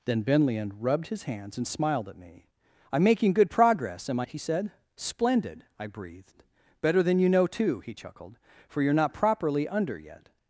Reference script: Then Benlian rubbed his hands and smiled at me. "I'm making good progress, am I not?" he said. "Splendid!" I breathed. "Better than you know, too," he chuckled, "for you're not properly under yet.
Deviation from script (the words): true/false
true